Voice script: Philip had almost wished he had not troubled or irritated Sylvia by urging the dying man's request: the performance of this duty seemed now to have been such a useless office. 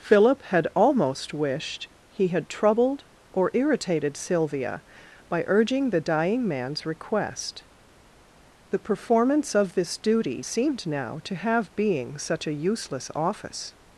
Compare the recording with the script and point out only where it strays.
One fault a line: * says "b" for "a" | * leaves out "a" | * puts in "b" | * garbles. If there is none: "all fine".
* leaves out "not"
* says "being" for "been"